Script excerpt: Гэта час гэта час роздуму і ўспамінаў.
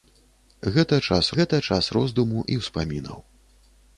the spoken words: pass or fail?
pass